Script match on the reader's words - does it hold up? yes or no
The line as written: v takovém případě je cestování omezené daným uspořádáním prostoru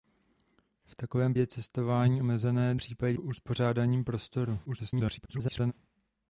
no